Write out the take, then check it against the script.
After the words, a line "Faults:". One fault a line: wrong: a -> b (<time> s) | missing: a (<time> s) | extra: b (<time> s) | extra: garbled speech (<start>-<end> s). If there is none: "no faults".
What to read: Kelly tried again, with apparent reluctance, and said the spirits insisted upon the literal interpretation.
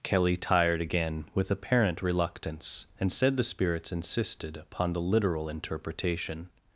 Kelly tired again, with apparent reluctance, and said the spirits insisted upon the literal interpretation.
Faults:
wrong: tried -> tired (0.3 s)